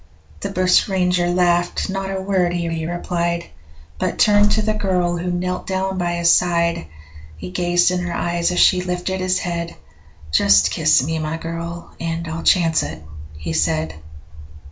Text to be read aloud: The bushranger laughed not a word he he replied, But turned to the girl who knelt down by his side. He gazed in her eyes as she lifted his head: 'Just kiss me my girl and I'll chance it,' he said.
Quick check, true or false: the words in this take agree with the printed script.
true